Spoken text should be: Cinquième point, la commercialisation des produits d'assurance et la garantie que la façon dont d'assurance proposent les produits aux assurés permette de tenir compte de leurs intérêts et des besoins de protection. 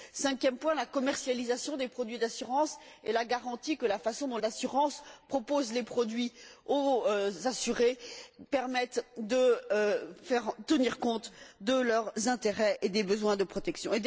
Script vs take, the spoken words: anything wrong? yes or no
no